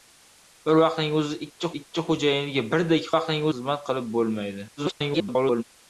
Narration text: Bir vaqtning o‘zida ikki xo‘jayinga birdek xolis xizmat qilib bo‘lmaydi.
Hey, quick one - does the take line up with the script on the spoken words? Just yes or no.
no